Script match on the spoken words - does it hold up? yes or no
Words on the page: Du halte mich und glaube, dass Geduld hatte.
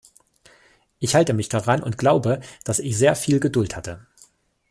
no